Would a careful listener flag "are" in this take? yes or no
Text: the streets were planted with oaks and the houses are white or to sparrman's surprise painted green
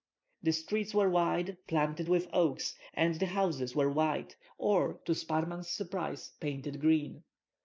yes